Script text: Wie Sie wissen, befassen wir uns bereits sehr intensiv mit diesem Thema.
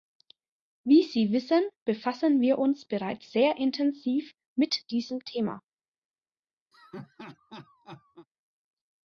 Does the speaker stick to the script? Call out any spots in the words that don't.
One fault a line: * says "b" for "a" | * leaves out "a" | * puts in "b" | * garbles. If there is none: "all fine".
all fine